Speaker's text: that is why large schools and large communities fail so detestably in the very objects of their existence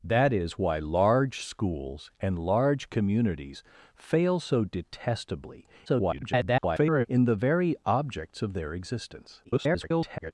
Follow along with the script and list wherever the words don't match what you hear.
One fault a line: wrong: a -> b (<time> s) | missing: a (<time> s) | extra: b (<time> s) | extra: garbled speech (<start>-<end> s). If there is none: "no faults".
extra: garbled speech (5.9-7.1 s)
extra: garbled speech (9.4-10.3 s)